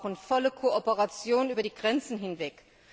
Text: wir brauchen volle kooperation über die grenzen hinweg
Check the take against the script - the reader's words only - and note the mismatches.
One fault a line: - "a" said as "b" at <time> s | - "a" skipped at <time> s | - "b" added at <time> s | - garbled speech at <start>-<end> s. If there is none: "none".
none